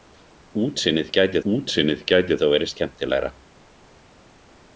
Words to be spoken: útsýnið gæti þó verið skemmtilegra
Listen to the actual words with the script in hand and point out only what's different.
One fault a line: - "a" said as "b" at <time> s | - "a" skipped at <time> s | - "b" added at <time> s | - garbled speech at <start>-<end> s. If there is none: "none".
- "útsýnið gæti" added at 1.5 s